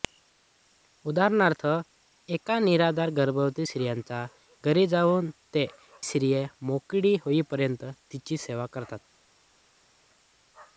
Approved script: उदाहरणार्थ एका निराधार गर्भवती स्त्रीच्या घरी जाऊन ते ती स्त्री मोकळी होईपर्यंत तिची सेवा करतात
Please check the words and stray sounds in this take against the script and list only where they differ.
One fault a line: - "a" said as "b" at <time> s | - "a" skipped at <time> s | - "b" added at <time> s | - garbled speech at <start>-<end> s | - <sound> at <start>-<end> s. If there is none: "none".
- "ती" skipped at 5.7 s